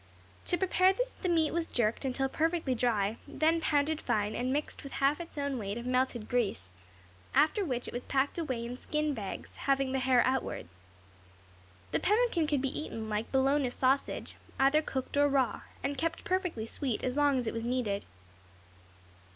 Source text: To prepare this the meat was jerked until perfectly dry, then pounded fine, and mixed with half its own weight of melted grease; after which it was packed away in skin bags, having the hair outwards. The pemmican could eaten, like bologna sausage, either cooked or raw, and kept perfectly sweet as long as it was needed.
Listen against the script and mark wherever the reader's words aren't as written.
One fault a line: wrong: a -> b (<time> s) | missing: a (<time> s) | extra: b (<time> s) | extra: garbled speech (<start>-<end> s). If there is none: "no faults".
extra: be (12.6 s)